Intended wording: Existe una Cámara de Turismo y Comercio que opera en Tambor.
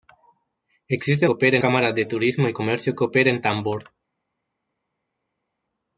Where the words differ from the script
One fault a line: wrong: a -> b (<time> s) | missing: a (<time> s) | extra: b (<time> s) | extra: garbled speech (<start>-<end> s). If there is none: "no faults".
wrong: una -> opera (1.3 s)